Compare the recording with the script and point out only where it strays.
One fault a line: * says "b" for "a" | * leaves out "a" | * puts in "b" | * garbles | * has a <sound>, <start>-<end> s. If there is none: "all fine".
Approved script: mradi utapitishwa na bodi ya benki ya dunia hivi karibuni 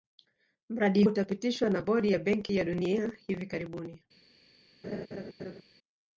* has a laugh, 4.8-5.6 s